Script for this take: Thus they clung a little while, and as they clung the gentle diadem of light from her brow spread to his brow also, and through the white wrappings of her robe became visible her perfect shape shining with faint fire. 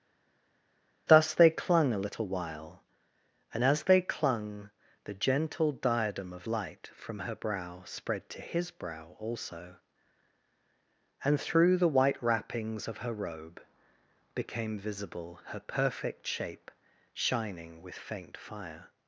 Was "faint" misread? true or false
false